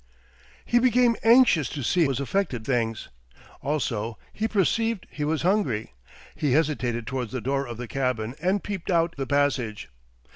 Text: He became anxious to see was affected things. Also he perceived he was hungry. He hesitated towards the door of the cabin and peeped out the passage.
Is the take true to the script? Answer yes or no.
yes